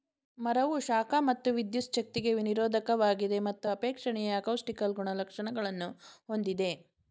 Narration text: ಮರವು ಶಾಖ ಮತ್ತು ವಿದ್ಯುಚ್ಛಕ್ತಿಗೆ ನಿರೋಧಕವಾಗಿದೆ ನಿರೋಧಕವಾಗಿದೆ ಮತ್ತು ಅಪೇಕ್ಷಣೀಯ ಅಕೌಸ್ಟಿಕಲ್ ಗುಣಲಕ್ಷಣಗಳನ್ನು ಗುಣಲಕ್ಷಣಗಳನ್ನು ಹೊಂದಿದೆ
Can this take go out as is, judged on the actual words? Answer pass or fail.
fail